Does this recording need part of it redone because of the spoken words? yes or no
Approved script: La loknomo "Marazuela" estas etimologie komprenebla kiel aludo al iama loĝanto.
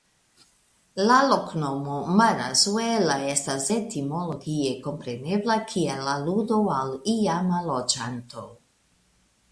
no